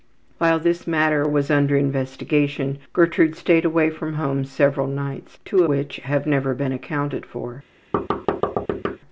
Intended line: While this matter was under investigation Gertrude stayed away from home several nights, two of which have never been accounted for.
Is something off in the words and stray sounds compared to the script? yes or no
yes